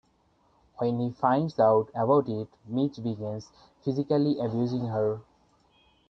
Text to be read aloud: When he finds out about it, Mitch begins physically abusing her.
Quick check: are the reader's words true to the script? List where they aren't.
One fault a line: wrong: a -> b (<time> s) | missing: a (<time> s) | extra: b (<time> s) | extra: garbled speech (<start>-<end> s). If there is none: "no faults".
no faults